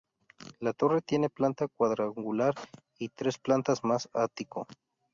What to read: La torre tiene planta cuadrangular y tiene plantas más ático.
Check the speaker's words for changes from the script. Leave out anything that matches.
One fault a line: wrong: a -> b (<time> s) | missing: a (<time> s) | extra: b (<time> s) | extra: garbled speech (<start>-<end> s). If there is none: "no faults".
wrong: tiene -> tres (3.1 s)